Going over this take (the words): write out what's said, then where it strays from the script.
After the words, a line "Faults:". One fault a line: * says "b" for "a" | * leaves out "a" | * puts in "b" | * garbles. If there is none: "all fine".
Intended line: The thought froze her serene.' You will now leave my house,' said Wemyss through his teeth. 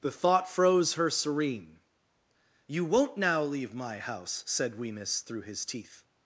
The thought froze her serene.' You won't now leave my house,' said Wemyss through his teeth.
Faults:
* says "won't" for "will"